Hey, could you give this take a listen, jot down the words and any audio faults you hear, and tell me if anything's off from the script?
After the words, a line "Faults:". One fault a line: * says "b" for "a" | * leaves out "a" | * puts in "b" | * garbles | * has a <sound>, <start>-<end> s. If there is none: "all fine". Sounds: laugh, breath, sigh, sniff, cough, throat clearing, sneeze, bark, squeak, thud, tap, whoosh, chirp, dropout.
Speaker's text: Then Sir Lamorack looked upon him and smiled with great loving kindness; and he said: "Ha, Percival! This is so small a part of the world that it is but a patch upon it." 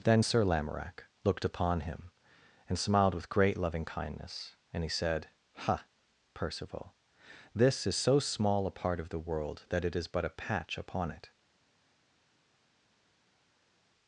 Then Sir Lamorack looked upon him and smiled with great loving kindness; and he said: "Ha, Percival! This is so small a part of the world that it is but a patch upon it."
Faults:
all fine